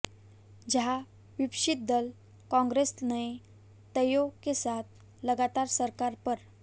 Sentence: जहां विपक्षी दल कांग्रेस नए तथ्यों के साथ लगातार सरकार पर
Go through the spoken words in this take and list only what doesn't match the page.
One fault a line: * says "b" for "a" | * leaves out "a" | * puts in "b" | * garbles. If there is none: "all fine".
all fine